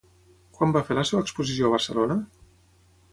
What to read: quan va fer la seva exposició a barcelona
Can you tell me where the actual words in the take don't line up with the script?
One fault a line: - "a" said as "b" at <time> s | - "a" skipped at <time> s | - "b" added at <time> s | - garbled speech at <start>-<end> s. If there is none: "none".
none